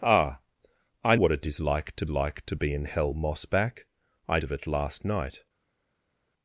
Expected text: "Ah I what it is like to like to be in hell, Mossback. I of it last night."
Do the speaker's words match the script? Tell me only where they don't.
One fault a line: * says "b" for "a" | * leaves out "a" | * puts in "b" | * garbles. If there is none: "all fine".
all fine